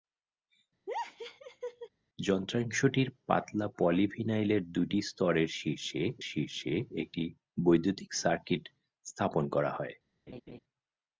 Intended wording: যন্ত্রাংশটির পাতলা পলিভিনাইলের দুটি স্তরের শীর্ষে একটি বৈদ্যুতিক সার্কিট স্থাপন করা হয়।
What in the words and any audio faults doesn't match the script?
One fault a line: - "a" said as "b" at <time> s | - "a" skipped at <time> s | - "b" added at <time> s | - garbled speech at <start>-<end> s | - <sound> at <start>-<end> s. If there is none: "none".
- laugh at 0.9-1.9 s
- "শীর্ষে" added at 6.3 s
- laugh at 10.3-10.6 s